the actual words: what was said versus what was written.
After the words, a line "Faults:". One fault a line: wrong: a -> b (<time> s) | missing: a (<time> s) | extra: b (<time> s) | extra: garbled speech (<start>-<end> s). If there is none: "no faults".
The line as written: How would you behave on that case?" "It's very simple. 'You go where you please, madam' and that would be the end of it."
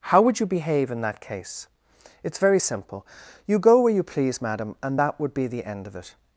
How would you behave in that case?" "It's very simple. 'You go where you please, madam' and that would be the end of it."
Faults:
wrong: on -> in (0.9 s)